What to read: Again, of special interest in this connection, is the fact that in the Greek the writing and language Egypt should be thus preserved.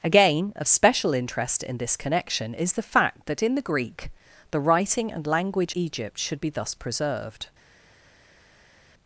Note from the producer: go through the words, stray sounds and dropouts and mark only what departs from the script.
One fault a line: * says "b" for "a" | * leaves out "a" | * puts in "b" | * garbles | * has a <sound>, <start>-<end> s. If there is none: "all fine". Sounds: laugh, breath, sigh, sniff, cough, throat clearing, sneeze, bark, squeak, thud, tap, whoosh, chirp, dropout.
all fine